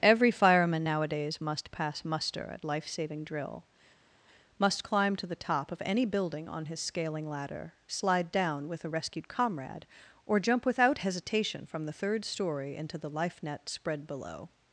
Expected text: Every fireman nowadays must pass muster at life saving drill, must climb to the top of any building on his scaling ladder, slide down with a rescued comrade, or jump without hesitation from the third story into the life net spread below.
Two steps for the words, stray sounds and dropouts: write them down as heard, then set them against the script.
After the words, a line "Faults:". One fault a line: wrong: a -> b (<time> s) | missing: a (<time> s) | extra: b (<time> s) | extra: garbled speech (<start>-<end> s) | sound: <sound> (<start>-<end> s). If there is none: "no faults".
Every fireman nowadays must pass muster at life saving drill, must climb to the top of any building on his scaling ladder, slide down with a rescued comrade, or jump without hesitation from the third story into the life net spread below.
Faults:
no faults